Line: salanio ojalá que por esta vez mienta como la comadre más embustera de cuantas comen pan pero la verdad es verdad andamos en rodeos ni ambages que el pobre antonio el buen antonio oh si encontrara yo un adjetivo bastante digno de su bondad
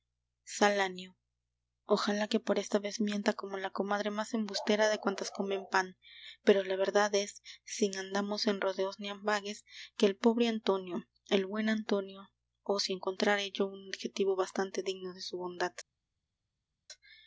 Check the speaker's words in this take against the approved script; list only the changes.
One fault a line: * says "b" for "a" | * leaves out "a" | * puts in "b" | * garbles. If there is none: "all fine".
* says "sin" for "verdad"